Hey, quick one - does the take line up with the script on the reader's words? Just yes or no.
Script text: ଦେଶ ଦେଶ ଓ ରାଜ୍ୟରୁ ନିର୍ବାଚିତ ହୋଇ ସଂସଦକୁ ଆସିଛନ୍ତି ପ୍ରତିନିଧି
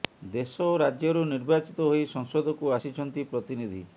no